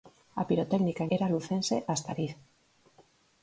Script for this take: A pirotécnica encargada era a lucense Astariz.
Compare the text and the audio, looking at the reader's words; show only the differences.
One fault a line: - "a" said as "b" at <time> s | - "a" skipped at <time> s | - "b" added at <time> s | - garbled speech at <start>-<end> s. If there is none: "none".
- "encargada" skipped at 1.0 s